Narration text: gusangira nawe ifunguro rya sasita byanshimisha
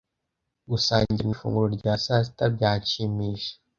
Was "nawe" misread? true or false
true